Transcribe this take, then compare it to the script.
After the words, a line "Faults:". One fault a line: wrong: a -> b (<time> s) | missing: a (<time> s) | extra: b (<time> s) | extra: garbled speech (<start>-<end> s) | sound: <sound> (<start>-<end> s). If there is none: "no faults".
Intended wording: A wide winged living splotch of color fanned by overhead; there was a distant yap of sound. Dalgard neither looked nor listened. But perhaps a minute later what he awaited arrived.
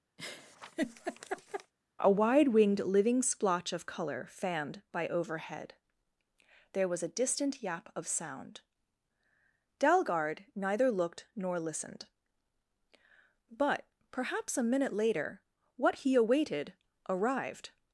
A wide winged living splotch of color fanned by overhead; there was a distant yap of sound. Dalgard neither looked nor listened. But perhaps a minute later what he awaited arrived.
Faults:
sound: laugh (0.2-1.7 s)